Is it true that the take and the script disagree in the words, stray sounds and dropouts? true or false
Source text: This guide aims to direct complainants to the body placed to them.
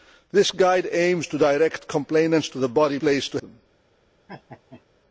true